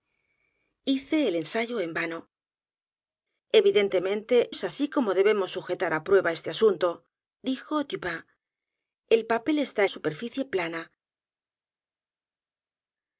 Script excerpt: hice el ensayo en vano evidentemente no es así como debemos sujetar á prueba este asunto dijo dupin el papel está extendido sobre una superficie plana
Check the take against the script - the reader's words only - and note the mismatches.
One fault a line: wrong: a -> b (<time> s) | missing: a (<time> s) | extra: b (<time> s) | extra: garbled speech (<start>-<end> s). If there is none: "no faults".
missing: no (4.5 s)
missing: extendido sobre una (9.8 s)